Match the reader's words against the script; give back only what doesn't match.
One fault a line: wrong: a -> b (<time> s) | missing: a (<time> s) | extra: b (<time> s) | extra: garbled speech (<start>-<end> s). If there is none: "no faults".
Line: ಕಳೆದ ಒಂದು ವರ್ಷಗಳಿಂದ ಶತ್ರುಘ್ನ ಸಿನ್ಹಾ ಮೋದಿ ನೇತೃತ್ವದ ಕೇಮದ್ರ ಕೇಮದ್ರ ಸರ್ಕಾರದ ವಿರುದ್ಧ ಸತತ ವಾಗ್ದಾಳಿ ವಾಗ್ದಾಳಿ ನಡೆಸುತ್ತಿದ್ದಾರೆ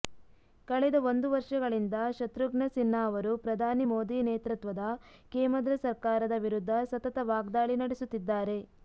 extra: ಅವರು ಪ್ರಧಾನಿ (3.1 s)
missing: ಕೇಮದ್ರ (5.7 s)
missing: ವಾಗ್ದಾಳಿ (7.8 s)